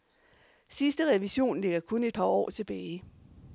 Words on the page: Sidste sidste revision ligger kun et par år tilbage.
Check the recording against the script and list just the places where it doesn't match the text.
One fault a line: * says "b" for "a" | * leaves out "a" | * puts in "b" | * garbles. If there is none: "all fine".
* leaves out "sidste"